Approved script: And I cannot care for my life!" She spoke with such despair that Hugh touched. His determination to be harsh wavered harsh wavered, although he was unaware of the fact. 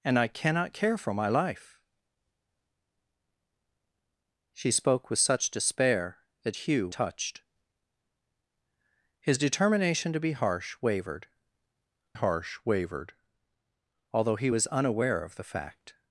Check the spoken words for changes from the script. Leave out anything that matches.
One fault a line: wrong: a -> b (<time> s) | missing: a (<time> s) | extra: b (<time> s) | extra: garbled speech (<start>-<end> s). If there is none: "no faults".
no faults